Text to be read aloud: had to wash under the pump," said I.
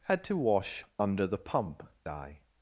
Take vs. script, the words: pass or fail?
fail